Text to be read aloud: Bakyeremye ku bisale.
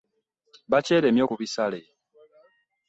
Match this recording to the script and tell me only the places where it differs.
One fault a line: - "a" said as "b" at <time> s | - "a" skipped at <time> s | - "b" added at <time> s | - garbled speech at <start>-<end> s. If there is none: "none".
none